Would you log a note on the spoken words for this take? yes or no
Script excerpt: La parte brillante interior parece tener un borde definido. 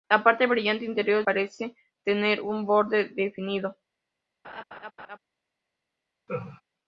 no